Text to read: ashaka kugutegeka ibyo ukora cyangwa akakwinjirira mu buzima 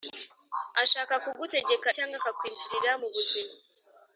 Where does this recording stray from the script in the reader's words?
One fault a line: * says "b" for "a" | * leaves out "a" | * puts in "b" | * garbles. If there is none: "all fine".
* leaves out "ibyo ukora"